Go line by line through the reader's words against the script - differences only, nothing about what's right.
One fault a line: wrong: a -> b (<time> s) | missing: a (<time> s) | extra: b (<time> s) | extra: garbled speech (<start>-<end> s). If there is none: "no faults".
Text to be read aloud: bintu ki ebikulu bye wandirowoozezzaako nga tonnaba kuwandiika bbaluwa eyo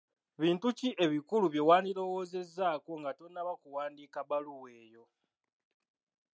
no faults